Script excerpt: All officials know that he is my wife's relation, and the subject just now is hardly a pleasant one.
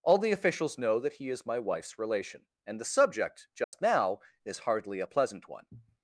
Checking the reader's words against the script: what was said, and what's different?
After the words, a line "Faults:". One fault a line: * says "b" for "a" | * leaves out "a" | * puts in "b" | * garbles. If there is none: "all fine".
All the officials know that he is my wife's relation, and the subject just now is hardly a pleasant one.
Faults:
* puts in "the"